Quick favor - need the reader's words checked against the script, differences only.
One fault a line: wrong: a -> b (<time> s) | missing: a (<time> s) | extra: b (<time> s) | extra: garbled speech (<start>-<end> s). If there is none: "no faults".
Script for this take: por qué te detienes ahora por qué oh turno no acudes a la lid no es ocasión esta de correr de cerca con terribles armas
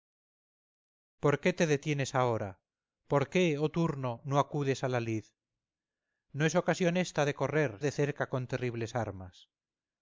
no faults